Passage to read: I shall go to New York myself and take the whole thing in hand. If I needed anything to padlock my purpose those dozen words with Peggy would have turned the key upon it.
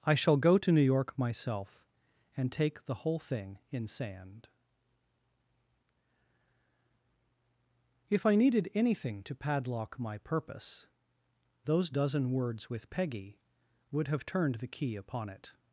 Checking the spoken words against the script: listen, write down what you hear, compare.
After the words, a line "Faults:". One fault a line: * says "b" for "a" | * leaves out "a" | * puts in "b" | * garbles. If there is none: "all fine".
I shall go to New York myself and take the whole thing in sand. If I needed anything to padlock my purpose those dozen words with Peggy would have turned the key upon it.
Faults:
* says "sand" for "hand"